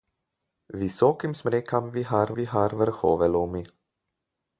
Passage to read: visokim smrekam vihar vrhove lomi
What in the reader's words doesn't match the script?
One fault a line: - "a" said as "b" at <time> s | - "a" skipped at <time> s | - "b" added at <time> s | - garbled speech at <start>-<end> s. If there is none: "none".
- "vihar" added at 2.4 s